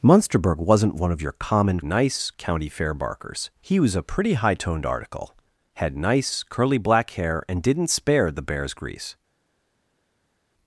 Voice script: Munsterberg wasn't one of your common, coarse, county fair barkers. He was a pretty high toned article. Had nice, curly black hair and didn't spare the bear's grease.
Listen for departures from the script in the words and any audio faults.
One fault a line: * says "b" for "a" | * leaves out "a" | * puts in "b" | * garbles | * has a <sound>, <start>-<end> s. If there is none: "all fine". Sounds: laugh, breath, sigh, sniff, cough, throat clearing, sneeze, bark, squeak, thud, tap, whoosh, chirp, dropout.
* says "nice" for "coarse"